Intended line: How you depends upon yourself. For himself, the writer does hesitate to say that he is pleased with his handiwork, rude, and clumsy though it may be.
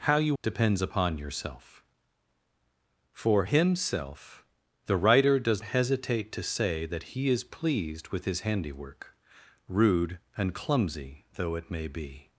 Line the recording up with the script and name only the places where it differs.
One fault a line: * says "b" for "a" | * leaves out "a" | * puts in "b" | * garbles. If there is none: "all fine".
all fine